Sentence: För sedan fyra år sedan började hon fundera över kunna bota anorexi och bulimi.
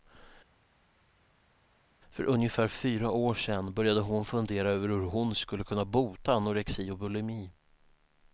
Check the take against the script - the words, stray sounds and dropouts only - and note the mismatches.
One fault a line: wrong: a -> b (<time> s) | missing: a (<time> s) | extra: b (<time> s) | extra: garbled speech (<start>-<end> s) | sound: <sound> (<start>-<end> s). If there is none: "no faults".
wrong: sedan -> ungefär (2.2 s)
extra: hur hon skulle (4.9 s)